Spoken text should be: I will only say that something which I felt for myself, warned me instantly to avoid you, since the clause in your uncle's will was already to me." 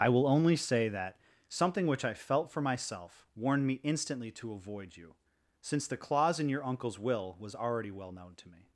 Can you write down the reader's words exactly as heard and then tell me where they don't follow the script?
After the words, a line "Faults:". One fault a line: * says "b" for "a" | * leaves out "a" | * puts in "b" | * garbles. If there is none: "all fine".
I will only say that something which I felt for myself, warned me instantly to avoid you, since the clause in your uncle's will was already well known to me."
Faults:
* puts in "well known"